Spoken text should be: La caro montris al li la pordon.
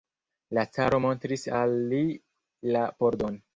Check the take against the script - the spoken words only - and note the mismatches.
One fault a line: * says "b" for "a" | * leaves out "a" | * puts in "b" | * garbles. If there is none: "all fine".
all fine